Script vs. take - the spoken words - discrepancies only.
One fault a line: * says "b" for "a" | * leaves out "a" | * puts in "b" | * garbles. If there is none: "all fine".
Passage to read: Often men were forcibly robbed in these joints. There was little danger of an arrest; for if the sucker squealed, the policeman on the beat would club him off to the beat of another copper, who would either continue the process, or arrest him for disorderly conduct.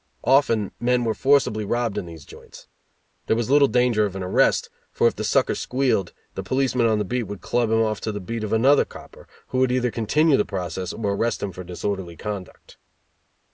all fine